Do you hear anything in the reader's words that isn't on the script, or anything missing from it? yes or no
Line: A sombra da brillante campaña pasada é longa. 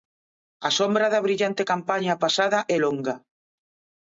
no